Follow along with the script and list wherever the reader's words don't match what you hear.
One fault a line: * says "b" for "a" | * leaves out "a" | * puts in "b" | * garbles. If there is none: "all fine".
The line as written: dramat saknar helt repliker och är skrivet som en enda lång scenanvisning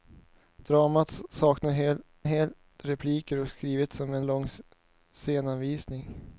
* puts in "helt"
* leaves out "enda"